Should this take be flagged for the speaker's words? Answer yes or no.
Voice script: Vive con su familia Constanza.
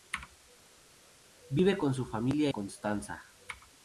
no